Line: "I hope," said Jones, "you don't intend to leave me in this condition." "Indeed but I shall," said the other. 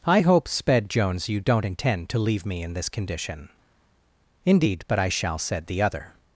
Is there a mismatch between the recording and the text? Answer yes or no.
yes